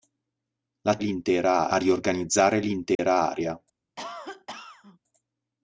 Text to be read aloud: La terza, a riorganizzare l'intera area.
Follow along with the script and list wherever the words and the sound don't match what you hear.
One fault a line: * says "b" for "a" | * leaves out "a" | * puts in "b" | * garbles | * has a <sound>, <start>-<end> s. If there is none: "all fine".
* says "l'intera" for "terza"
* has a dropout, 2.9-3.0 s
* has a cough, 4.0-5.0 s